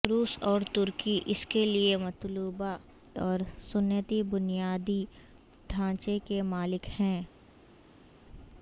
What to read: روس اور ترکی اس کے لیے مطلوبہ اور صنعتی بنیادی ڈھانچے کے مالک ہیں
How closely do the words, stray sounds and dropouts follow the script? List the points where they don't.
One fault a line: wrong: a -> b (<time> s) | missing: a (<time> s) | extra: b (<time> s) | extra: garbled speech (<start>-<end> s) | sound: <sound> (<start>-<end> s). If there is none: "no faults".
no faults